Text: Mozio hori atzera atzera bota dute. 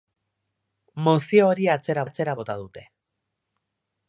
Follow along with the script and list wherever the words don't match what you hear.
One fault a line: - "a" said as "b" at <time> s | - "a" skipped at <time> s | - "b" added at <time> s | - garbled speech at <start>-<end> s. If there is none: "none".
none